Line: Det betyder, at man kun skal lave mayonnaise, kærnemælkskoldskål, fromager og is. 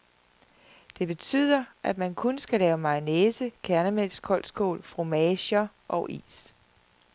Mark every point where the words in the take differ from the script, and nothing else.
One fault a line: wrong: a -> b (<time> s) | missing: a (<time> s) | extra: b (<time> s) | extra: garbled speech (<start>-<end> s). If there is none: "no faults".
no faults